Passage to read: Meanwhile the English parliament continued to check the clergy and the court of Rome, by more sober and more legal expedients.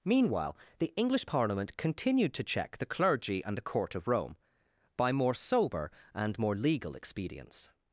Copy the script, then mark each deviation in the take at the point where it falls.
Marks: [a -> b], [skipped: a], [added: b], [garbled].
Meanwhile the English parliament continued to check the clergy and the court of Rome, by more sober and more legal expedients.